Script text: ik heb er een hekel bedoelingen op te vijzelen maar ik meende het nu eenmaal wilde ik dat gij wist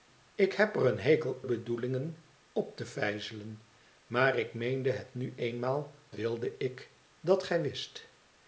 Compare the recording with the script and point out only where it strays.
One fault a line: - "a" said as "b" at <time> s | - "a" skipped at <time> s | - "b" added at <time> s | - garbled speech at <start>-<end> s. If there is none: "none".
none